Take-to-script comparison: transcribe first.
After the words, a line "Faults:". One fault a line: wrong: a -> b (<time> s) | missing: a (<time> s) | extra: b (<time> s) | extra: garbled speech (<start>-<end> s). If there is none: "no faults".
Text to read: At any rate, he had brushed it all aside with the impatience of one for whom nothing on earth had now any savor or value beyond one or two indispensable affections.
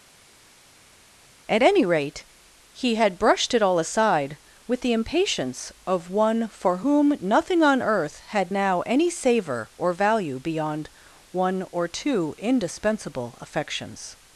At any rate, he had brushed it all aside with the impatience of one for whom nothing on earth had now any savor or value beyond one or two indispensable affections.
Faults:
no faults